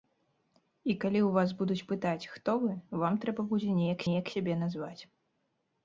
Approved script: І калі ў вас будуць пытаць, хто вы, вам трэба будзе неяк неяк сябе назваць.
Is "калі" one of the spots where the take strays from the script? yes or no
no